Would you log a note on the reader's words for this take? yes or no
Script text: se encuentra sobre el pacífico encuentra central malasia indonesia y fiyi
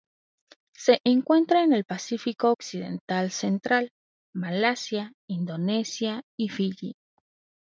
yes